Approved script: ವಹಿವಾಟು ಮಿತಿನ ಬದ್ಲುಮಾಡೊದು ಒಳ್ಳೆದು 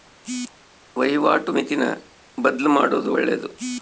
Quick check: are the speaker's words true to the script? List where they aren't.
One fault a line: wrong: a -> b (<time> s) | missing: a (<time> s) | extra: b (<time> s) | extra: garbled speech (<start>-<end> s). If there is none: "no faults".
no faults